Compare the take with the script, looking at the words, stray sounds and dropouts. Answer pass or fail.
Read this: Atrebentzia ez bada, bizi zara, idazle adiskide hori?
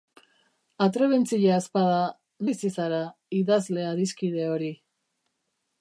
pass